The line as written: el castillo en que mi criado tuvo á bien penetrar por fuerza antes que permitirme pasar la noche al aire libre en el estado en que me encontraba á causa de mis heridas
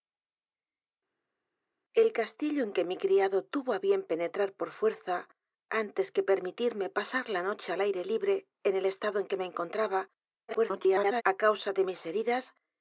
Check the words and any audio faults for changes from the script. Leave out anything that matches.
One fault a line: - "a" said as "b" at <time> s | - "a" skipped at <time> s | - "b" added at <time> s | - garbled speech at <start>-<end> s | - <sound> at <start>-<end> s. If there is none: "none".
- garbled speech at 10.5-11.2 s